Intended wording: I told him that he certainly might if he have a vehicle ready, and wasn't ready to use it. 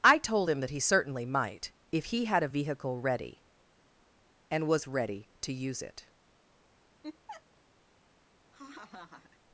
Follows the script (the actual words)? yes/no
no